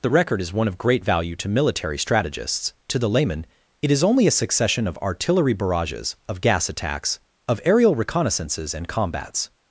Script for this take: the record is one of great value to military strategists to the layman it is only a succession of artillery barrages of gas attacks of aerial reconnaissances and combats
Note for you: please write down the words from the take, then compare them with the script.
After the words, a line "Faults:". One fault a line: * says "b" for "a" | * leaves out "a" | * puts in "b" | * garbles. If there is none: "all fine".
the record is one of great value to military strategists to the layman it is only a succession of artillery barrages of gas attacks of aerial reconnaissances and combats
Faults:
all fine